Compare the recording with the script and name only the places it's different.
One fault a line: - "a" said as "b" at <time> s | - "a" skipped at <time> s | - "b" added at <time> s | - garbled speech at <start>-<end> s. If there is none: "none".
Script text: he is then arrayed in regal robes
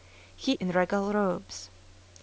- "is then arrayed" skipped at 0.5 s